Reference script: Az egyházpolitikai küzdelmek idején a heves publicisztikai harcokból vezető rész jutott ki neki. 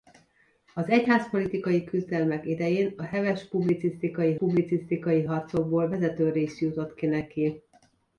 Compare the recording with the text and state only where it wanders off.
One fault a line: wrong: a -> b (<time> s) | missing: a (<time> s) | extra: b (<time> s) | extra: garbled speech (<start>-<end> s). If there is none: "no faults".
extra: publicisztikai (4.3 s)